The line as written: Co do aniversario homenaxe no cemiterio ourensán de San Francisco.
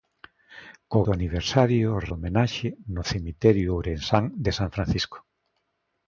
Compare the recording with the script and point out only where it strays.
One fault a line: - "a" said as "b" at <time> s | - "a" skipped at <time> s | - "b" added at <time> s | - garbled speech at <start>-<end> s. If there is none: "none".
none